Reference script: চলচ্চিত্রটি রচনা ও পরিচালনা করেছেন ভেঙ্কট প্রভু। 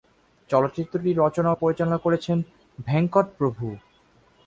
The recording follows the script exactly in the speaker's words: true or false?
true